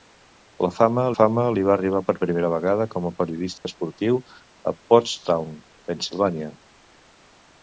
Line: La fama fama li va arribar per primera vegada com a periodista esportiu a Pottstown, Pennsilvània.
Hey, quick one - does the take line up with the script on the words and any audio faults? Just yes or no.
no